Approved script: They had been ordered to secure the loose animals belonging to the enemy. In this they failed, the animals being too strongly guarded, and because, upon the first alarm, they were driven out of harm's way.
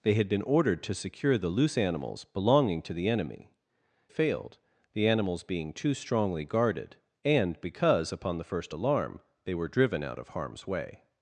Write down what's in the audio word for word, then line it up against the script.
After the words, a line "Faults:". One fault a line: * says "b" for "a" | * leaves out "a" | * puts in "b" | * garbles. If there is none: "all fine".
They had been ordered to secure the loose animals belonging to the enemy. Failed, the animals being too strongly guarded, and because, upon the first alarm, they were driven out of harm's way.
Faults:
* leaves out "In this they"